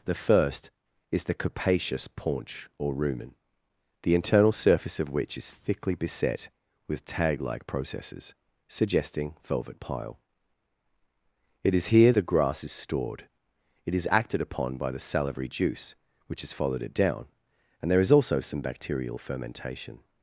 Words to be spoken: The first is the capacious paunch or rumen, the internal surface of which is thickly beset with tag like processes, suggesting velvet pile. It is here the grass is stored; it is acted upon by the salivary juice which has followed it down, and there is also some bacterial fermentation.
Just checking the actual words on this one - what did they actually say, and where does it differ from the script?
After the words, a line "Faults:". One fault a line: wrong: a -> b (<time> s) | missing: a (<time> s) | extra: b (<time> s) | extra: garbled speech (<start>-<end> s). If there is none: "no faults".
The first is the capacious paunch or rumen, the internal surface of which is thickly beset with tag like processes, suggesting velvet pile. It is here the grass is stored; it is acted upon by the salivary juice which has followed it down, and there is also some bacterial fermentation.
Faults:
no faults